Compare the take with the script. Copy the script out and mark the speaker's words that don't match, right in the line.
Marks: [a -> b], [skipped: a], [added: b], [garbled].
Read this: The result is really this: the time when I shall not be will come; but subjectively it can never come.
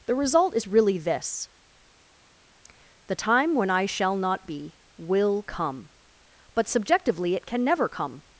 The result is really this: the time when I shall not be will come; but subjectively it can never come.